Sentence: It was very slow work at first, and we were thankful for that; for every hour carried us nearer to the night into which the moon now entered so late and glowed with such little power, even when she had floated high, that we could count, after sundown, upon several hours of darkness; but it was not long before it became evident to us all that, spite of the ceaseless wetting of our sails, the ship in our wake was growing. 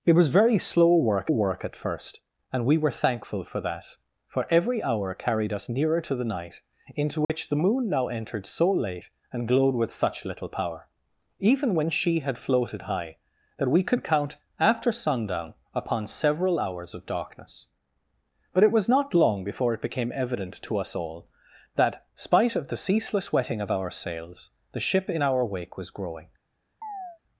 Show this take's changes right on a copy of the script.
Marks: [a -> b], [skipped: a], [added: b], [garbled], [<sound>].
It was very slow work [added: work] at first, and we were thankful for that; for every hour carried us nearer to the night into which [dropout] the moon now entered so late and glowed with such little power, even when she had floated high, that we could count, after sundown, upon several hours of darkness; but it was not long before it became evident to us all that, spite of the ceaseless wetting of our sails, the ship in our wake was growing. [chirp]